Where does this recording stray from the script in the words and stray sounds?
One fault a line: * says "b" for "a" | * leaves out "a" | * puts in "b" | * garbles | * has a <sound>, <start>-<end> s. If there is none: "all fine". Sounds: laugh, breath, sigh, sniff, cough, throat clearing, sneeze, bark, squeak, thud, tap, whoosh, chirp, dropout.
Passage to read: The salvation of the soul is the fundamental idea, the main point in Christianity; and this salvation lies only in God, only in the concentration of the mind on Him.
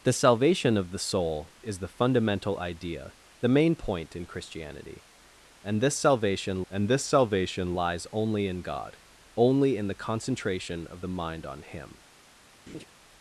* puts in "and this salvation"
* has a laugh, 12.7-12.9 s